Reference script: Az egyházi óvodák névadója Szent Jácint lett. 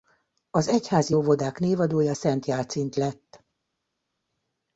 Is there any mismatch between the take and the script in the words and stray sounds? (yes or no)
no